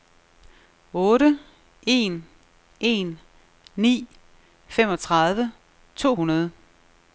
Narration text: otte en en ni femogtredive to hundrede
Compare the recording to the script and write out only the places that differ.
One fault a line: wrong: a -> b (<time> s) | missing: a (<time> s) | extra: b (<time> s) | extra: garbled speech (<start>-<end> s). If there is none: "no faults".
no faults